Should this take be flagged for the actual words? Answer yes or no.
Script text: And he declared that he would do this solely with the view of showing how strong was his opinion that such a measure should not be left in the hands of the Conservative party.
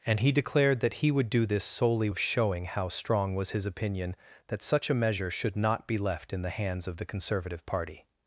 yes